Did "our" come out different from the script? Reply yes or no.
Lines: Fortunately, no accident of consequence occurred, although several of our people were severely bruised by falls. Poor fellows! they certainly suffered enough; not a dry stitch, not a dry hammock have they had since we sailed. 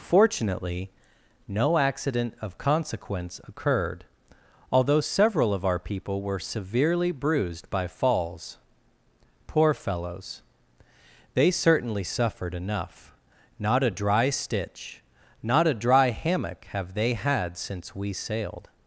no